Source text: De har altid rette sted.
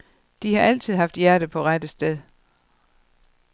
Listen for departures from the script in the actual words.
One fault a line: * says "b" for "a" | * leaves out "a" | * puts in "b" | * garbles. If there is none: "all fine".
* puts in "haft hjertet på"